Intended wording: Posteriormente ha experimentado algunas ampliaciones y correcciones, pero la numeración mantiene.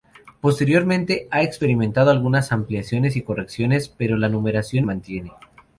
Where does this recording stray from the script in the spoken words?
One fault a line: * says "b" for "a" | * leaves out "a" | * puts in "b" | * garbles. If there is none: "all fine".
all fine